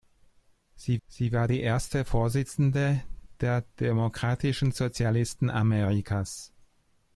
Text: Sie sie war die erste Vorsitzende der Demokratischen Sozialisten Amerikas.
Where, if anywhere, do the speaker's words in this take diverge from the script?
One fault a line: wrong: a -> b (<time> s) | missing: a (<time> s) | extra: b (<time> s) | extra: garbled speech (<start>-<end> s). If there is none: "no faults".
no faults